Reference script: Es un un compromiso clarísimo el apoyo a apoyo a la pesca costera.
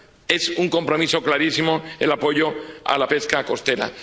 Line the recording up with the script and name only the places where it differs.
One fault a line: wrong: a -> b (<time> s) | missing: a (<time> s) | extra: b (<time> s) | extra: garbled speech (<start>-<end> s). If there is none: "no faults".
missing: un (0.7 s)
missing: apoyo a (3.0 s)